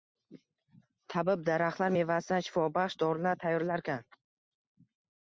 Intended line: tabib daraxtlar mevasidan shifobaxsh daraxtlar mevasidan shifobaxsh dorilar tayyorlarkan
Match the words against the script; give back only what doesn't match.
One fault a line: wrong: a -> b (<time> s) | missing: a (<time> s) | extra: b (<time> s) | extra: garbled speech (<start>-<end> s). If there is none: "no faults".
missing: daraxtlar mevasidan shifobaxsh (3.0 s)